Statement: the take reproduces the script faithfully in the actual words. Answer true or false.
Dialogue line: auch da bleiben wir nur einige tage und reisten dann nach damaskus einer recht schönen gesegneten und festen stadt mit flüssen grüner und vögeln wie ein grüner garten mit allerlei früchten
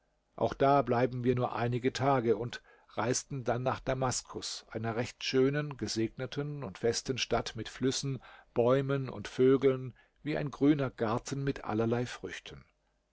false